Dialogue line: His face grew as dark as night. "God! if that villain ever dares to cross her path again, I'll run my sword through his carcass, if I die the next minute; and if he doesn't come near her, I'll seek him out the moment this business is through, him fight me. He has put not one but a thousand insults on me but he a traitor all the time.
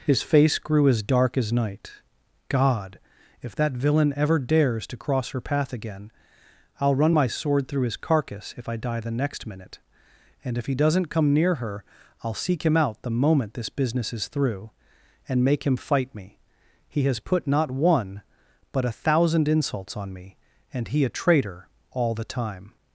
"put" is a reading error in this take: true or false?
false